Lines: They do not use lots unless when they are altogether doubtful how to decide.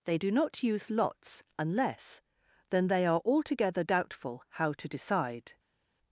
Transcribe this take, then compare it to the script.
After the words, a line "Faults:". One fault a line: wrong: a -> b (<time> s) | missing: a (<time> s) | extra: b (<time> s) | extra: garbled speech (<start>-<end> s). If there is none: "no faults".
They do not use lots unless then they are altogether doubtful how to decide.
Faults:
wrong: when -> then (2.7 s)